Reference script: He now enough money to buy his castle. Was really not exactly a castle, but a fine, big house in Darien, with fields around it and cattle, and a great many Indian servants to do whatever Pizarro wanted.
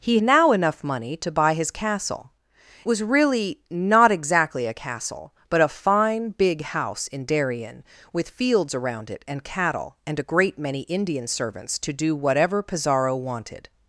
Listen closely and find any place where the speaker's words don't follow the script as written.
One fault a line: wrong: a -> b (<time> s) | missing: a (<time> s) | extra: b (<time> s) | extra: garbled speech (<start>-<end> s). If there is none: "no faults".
no faults